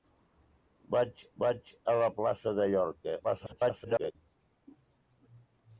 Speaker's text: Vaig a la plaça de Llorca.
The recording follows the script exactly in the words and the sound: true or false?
false